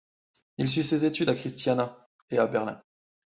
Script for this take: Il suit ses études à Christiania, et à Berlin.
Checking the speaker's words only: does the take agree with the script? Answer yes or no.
yes